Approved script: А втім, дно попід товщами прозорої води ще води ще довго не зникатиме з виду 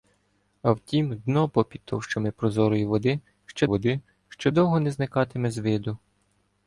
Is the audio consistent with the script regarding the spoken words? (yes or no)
yes